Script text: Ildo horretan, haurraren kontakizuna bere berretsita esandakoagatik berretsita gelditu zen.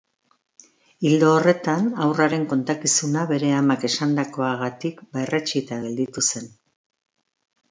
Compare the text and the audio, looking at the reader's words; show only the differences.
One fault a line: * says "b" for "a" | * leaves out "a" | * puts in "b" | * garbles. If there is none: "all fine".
* says "amak" for "berretsita"